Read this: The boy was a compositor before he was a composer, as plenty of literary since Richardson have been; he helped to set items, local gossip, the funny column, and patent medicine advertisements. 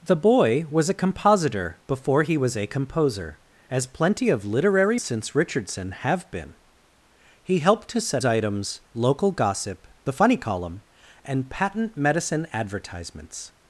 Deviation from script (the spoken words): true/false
false